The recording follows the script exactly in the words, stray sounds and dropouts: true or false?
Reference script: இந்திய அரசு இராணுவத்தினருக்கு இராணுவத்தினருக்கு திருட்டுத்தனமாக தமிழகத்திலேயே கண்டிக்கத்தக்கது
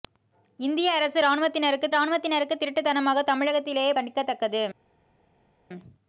true